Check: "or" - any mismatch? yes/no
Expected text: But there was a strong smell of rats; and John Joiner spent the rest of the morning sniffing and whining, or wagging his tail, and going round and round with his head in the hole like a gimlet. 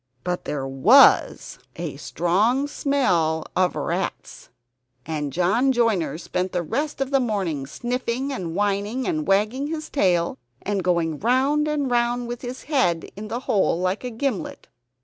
yes